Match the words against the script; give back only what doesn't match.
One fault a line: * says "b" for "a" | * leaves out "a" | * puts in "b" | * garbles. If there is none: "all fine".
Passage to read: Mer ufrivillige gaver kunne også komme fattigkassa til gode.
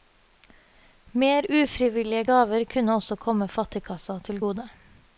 all fine